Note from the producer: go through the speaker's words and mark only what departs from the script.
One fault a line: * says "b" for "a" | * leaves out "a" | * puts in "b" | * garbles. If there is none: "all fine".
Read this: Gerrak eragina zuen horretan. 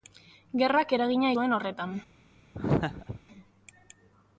all fine